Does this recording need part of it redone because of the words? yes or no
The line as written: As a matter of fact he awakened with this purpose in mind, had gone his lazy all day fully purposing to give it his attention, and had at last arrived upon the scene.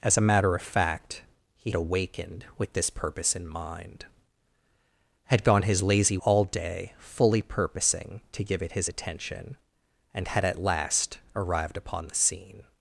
no